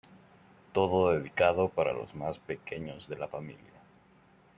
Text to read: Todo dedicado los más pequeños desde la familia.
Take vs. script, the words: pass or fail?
fail